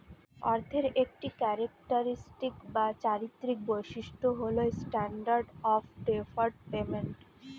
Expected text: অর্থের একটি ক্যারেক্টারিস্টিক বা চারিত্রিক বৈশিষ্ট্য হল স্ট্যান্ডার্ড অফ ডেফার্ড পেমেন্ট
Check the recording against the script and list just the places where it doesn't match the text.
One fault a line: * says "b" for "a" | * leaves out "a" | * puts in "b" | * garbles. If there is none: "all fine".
all fine